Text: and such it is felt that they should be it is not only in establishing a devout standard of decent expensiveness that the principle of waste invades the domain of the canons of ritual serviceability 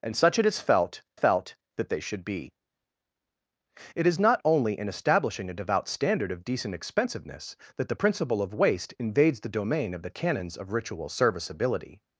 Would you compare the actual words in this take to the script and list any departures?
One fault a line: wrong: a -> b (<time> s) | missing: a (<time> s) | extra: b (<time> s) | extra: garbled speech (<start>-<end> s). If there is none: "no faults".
extra: felt (1.1 s)